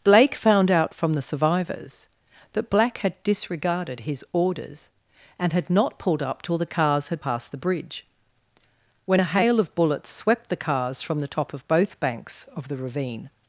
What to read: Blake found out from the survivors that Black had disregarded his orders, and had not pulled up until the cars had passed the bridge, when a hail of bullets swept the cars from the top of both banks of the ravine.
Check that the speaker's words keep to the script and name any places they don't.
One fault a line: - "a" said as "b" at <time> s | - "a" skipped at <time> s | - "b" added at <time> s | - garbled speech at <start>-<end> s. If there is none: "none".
- "until" said as "till" at 6.4 s